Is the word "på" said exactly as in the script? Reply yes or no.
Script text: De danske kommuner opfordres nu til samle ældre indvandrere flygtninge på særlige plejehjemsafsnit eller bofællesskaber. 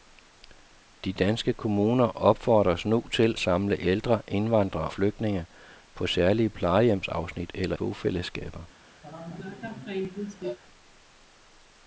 yes